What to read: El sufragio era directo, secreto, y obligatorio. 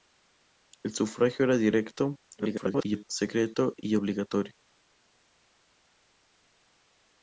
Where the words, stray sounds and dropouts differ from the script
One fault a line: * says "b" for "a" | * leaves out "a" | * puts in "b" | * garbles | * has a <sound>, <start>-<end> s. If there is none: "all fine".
* garbles